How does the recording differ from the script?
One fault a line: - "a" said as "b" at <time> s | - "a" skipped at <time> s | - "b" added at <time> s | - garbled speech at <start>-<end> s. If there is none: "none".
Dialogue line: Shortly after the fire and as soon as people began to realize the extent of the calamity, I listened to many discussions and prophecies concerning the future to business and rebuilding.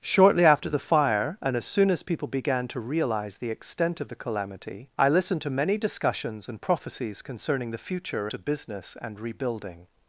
none